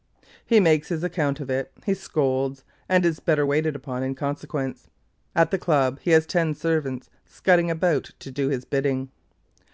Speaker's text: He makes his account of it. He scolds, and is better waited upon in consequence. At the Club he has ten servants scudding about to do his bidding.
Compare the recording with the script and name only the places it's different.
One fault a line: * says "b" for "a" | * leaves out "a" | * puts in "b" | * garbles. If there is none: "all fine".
all fine